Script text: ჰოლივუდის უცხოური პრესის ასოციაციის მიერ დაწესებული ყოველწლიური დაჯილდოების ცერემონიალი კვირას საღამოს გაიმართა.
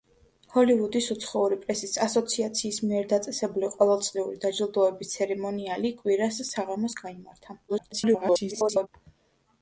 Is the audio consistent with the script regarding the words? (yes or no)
no